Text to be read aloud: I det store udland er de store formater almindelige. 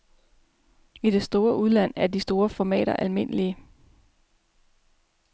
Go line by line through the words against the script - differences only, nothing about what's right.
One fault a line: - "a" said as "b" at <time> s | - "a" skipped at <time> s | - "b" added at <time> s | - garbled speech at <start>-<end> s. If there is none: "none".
none